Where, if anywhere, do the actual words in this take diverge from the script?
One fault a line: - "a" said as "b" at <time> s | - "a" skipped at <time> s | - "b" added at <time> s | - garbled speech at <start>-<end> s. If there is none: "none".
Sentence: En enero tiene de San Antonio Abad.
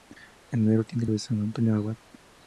none